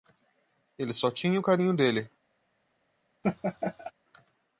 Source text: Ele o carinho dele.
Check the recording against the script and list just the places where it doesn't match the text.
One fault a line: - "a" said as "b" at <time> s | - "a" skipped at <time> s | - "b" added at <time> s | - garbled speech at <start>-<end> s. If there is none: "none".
- "só tinha" added at 0.9 s